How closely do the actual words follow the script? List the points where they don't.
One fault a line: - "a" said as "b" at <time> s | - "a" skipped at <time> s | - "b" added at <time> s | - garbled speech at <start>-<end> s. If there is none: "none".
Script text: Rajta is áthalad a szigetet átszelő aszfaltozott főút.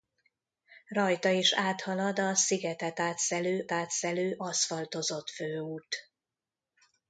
- "átszelő" added at 3.7 s